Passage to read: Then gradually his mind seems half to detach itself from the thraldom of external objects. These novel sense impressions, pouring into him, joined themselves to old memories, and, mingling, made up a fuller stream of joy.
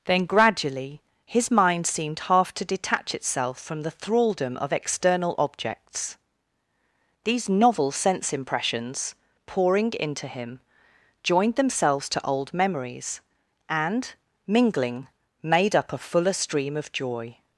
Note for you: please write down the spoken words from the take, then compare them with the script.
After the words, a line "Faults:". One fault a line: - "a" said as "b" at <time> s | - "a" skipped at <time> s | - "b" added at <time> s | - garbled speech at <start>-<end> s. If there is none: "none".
Then gradually his mind seemed half to detach itself from the thraldom of external objects. These novel sense impressions, pouring into him, joined themselves to old memories, and, mingling, made up a fuller stream of joy.
Faults:
- "seems" said as "seemed" at 1.8 s